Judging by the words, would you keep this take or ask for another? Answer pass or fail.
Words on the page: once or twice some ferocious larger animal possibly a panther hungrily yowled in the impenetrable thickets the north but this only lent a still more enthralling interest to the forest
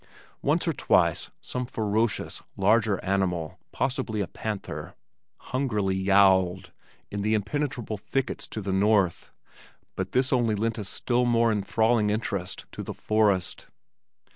fail